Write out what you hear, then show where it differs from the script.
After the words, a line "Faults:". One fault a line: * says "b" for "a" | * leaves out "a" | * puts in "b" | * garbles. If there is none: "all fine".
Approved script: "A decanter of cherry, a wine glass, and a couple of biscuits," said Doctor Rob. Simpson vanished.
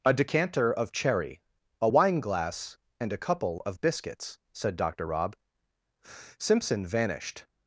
"A decanter of cherry, a wine glass, and a couple of biscuits," said Doctor Rob. Simpson vanished.
Faults:
all fine